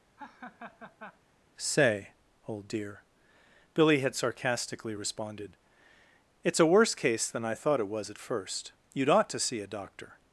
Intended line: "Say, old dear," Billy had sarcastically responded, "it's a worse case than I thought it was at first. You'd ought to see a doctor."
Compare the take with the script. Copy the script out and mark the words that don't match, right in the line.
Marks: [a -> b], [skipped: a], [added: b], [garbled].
"Say, old dear," Billy had sarcastically responded, "it's a worse case than I thought it was at first. You'd ought to see a doctor."